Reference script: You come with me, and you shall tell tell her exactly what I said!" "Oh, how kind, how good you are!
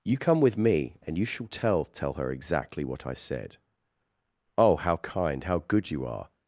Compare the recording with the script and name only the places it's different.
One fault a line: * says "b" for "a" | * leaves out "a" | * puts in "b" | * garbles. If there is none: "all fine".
all fine